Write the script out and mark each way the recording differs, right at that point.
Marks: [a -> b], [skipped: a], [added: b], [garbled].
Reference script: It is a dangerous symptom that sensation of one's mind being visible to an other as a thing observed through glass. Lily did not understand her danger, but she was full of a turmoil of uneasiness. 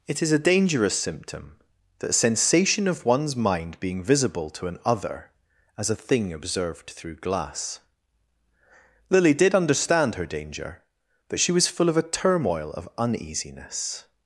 It is a dangerous symptom that sensation of one's mind being visible to an other as a thing observed through glass. Lily did [skipped: not] understand her danger, but she was full of a turmoil of uneasiness.